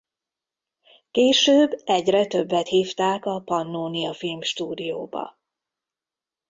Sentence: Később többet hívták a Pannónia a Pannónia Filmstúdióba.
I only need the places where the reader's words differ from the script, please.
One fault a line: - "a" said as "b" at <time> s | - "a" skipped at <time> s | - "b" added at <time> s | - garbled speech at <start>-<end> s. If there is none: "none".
- "egyre" added at 1.8 s
- "a Pannónia" skipped at 4.1 s